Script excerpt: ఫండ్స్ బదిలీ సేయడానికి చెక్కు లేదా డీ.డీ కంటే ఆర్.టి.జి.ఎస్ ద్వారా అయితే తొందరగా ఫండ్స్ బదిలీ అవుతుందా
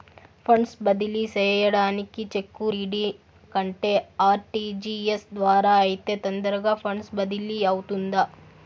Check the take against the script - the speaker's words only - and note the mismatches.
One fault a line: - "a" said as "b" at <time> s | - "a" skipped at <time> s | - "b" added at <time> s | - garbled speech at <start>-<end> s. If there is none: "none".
- "లేదా" skipped at 2.7 s